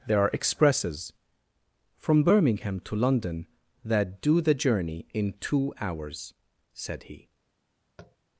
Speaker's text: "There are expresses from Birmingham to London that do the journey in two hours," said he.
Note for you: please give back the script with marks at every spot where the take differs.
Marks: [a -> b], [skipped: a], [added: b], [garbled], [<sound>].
"There are expresses from Birmingham to London that do the journey in two hours," said he. [tap]